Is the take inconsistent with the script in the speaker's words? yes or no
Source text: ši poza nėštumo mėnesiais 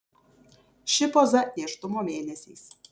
no